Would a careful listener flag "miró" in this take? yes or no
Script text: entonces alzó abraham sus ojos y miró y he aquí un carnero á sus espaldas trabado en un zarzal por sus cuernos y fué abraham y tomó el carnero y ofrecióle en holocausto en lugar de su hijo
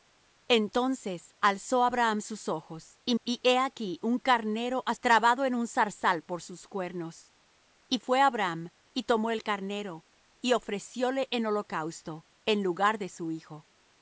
yes